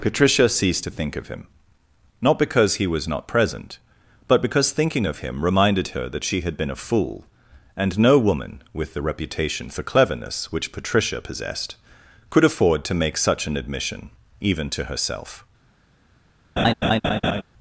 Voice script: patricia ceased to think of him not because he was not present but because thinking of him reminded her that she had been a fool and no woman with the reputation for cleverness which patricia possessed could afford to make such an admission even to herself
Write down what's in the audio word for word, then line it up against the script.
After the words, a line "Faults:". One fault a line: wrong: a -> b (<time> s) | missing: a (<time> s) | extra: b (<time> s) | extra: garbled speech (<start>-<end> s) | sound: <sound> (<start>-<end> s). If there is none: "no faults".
patricia ceased to think of him not because he was not present but because thinking of him reminded her that she had been a fool and no woman with the reputation for cleverness which patricia possessed could afford to make such an admission even to herself
Faults:
sound: laugh (16.6-17.4 s)